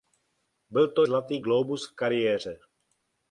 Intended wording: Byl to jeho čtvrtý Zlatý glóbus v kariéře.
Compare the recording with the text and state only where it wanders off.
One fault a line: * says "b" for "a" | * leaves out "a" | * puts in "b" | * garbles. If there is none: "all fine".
* leaves out "jeho čtvrtý"